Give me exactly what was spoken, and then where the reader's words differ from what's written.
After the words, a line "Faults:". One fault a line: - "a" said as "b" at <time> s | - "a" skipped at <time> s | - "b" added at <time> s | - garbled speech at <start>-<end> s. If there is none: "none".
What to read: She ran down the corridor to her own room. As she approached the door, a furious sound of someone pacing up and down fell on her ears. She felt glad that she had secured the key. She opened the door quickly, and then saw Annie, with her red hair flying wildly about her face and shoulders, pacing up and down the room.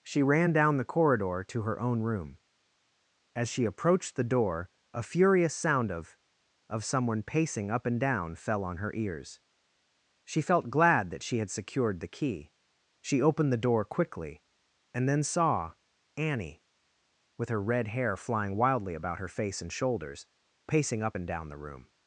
She ran down the corridor to her own room. As she approached the door, a furious sound of of someone pacing up and down fell on her ears. She felt glad that she had secured the key. She opened the door quickly, and then saw Annie, with her red hair flying wildly about her face and shoulders, pacing up and down the room.
Faults:
- "of" added at 6.7 s